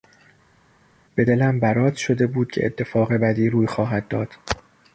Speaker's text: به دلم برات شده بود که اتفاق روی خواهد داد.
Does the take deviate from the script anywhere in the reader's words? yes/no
yes